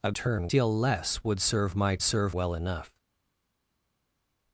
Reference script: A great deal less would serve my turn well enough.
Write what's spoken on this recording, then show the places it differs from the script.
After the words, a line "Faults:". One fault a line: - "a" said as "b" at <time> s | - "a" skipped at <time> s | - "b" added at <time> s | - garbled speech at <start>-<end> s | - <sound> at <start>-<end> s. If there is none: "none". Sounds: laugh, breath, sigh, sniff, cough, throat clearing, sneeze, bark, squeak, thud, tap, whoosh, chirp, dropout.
A turn deal less would serve my serve well enough.
Faults:
- "great" said as "turn" at 0.1 s
- "turn" said as "serve" at 2.0 s